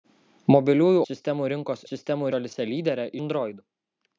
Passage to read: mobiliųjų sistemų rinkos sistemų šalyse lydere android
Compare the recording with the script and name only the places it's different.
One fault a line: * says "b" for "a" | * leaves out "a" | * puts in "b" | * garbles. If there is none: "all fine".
all fine